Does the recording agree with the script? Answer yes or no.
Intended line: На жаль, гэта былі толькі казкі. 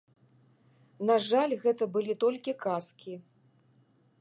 yes